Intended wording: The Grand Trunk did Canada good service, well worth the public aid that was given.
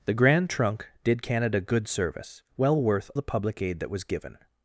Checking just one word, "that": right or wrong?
right